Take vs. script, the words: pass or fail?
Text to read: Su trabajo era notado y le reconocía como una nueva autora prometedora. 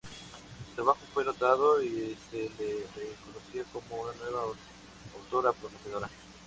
fail